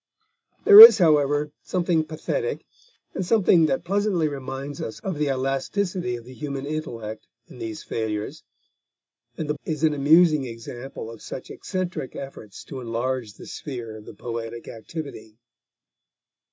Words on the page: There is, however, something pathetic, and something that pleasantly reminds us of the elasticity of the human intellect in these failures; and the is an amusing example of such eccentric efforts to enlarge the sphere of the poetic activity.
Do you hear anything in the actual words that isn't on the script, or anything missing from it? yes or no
no